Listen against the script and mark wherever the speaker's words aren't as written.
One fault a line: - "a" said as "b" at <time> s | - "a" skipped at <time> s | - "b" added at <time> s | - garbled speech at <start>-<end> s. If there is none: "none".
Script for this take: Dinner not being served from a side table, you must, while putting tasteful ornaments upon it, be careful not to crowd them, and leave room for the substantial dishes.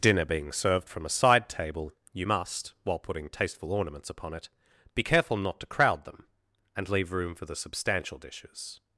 - "not" skipped at 0.2 s